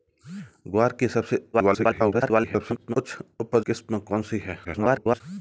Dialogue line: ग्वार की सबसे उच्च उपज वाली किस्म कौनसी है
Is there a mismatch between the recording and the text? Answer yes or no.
yes